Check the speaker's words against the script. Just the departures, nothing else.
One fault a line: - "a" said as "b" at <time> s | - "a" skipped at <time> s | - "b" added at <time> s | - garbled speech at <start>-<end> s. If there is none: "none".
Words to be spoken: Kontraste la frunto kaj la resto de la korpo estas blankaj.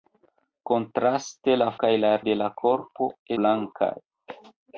- "frunto" skipped at 1.7 s
- "resto" skipped at 2.1 s
- "estas" skipped at 3.1 s